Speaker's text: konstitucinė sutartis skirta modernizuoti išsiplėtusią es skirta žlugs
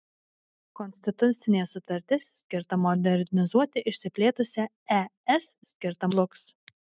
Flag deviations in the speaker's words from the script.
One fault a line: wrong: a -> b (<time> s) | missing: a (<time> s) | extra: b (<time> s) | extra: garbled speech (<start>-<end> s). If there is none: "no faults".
no faults